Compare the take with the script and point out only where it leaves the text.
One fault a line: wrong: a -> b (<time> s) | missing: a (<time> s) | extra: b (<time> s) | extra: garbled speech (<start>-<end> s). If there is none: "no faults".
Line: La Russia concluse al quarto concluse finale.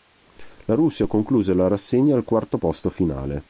extra: la rassegna (1.5 s)
wrong: concluse -> posto (2.5 s)